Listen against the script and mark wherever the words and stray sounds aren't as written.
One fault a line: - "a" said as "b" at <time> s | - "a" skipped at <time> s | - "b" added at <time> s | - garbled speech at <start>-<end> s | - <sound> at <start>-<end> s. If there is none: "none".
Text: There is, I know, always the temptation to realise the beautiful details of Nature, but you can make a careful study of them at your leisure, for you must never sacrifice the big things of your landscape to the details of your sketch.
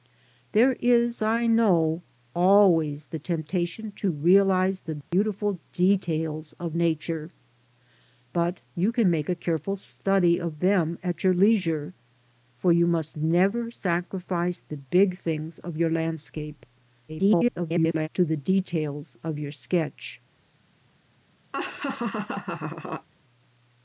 - dropout at 5.0-5.1 s
- garbled speech at 17.1-18.1 s
- laugh at 21.5-23.1 s